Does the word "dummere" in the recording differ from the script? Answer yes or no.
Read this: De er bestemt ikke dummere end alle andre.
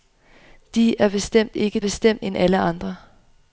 yes